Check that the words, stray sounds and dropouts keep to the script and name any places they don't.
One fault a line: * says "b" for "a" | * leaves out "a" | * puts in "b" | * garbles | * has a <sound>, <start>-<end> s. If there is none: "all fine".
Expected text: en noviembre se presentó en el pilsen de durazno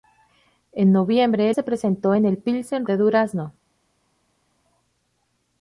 all fine